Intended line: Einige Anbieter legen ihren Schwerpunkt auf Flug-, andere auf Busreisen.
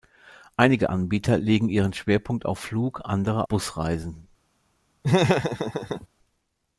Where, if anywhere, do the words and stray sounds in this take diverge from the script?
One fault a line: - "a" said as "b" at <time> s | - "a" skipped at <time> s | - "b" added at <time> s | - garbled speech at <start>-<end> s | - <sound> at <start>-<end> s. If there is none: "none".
- "auf" skipped at 3.5 s
- laugh at 5.0-6.1 s